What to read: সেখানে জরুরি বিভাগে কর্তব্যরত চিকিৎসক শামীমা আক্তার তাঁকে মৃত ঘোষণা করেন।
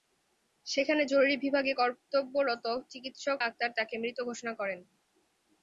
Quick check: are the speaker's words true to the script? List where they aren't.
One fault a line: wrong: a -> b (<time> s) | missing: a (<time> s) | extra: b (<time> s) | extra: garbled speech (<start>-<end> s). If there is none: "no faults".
missing: শামীমা (3.4 s)